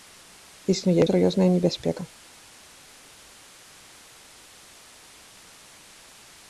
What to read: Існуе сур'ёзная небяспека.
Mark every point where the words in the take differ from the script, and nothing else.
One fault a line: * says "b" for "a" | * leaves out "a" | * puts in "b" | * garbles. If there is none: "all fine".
all fine